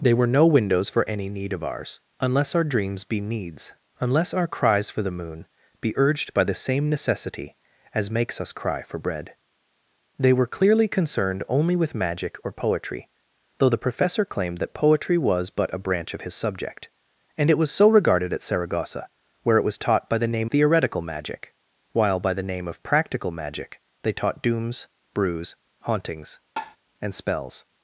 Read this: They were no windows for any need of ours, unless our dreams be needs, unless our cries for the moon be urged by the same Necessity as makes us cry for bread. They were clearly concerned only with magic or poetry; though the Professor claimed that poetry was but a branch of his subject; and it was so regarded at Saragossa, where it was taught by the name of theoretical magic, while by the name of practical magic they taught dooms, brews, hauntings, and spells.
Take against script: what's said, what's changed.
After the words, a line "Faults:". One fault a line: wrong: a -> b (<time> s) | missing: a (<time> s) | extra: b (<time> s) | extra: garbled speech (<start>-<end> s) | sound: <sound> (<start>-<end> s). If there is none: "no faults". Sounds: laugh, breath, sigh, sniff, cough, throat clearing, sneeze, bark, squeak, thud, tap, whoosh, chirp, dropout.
They were no windows for any need of ours, unless our dreams be needs, unless our cries for the moon be urged by the same Necessity as makes us cry for bread. They were clearly concerned only with magic or poetry; though the Professor claimed that poetry was but a branch of his subject; and it was so regarded at Saragossa, where it was taught by the name theoretical magic, while by the name of practical magic they taught dooms, brews, hauntings, and spells.
Faults:
missing: of (20.5 s)
sound: tap (26.6-26.8 s)